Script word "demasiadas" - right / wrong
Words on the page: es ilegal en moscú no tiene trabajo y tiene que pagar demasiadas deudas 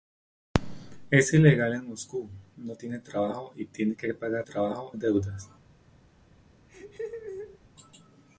wrong